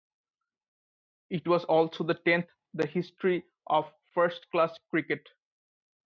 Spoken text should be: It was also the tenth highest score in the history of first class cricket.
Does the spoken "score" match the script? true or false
false